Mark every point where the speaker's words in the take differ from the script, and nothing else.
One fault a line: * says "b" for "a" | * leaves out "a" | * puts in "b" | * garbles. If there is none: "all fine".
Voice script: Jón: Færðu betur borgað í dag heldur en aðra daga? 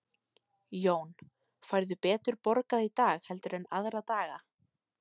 all fine